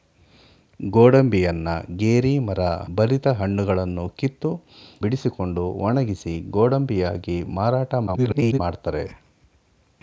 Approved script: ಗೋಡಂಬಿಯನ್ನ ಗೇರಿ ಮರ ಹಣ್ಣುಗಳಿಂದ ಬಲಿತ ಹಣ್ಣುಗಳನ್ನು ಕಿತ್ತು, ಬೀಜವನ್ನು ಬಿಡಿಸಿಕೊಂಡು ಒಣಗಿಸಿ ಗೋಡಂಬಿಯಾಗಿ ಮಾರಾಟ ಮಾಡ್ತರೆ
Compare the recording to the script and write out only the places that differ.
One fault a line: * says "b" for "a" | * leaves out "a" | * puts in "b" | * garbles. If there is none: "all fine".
* leaves out "ಹಣ್ಣುಗಳಿಂದ"
* leaves out "ಬೀಜವನ್ನು"
* garbles